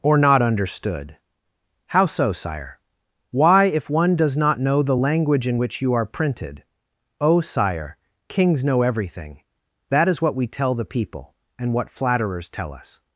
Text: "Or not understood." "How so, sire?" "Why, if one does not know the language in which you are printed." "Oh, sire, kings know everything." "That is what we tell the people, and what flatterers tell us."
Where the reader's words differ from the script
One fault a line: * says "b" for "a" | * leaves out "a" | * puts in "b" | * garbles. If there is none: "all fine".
all fine